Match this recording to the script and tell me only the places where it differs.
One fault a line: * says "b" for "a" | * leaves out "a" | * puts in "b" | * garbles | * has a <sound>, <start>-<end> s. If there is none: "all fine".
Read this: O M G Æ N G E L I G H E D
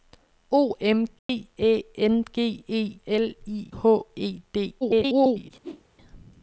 * has a dropout, 1.2-1.3 s
* leaves out "G"
* garbles
* has a whoosh, 5.6-5.8 s